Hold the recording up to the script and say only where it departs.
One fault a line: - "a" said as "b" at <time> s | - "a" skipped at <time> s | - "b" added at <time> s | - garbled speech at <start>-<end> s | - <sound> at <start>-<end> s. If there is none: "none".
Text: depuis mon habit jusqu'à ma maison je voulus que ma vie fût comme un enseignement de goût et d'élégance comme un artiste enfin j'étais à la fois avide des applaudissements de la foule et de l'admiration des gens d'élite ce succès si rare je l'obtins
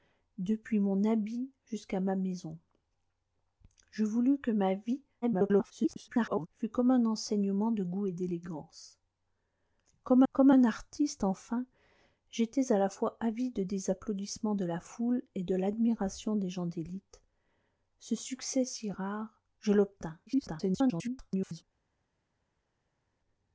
- garbled speech at 5.2-6.5 s
- "comme" added at 10.3 s
- garbled speech at 20.3-21.6 s